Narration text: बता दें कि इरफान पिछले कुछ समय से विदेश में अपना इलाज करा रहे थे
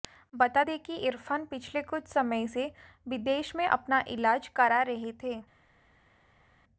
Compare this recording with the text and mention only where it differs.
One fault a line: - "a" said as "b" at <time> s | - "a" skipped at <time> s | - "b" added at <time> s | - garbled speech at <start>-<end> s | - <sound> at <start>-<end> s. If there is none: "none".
none